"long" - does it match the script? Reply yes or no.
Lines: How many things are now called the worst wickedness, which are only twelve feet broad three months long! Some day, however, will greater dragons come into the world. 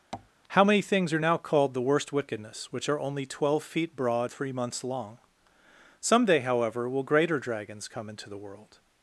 yes